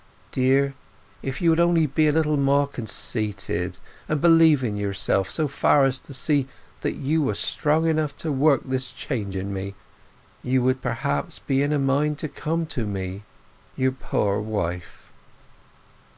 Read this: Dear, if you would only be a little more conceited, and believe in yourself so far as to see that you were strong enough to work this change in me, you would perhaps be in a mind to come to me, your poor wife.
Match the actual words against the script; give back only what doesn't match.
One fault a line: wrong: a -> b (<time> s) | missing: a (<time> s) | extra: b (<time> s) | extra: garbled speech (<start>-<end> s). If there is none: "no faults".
no faults